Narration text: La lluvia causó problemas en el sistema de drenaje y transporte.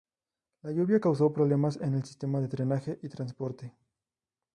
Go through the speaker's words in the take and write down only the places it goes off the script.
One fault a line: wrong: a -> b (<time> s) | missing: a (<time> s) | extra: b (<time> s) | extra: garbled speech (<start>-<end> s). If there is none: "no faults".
no faults